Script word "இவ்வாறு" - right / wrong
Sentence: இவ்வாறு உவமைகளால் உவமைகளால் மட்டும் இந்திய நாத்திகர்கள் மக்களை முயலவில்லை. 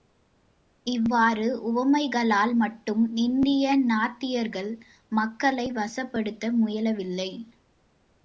right